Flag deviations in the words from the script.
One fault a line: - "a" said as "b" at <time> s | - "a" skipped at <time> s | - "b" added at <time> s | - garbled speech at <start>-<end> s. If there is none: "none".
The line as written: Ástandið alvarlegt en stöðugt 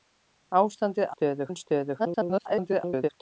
- "alvarlegt" said as "stöðugt" at 1.1 s
- garbled speech at 2.0-3.1 s